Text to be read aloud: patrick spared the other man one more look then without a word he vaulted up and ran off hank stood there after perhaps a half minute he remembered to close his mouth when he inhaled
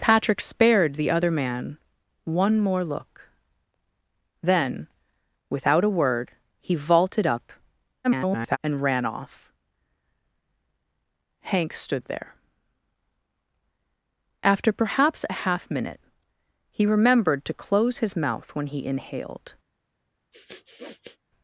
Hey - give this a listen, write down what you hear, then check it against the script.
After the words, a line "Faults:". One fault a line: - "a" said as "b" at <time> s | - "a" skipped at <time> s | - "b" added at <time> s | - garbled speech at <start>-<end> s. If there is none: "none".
patrick spared the other man one more look then without a word he vaulted up [garbled] and ran off hank stood there after perhaps a half minute he remembered to close his mouth when he inhaled
Faults:
- garbled speech at 8.0-8.6 s